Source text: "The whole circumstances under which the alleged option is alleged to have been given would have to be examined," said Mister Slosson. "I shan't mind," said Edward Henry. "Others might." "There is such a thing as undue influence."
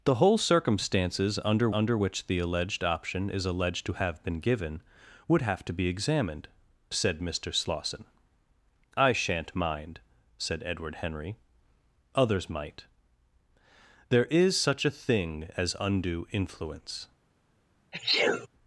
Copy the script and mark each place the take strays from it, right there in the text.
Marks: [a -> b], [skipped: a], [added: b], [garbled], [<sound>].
"The whole circumstances under [added: under] which the alleged option is alleged to have been given would have to be examined," said Mister Slosson. "I shan't mind," said Edward Henry. "Others might." "There is such a thing as undue influence." [sneeze]